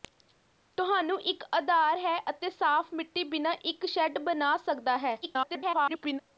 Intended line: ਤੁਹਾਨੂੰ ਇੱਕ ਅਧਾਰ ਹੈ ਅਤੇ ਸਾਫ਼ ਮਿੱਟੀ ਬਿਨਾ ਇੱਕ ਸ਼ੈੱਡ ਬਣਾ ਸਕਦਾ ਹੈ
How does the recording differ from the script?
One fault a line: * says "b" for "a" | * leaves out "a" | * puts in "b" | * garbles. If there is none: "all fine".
* garbles